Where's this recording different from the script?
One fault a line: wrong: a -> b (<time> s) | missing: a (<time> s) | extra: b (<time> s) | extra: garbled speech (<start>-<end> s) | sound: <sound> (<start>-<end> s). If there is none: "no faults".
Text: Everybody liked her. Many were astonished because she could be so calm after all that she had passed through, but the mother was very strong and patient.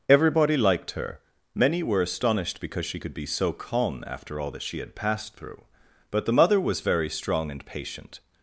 no faults